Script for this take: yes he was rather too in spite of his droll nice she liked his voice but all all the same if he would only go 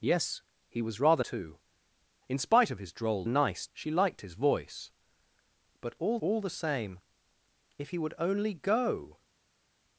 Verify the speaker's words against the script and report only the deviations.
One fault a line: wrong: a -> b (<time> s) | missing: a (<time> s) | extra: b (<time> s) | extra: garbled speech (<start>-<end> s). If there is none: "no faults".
no faults